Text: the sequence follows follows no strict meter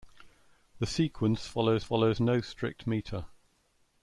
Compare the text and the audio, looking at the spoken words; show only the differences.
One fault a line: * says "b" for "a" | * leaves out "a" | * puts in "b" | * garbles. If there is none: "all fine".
all fine